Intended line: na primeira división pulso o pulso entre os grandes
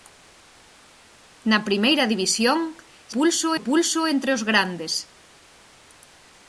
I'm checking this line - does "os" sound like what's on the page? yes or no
yes